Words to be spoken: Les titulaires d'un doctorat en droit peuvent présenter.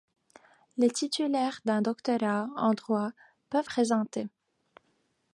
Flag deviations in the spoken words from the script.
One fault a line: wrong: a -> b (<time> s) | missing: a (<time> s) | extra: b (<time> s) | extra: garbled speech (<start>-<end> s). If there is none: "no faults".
no faults